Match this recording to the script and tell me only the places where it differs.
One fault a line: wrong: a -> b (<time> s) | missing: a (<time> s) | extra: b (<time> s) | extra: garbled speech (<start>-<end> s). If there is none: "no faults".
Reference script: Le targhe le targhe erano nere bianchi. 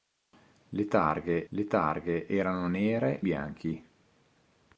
no faults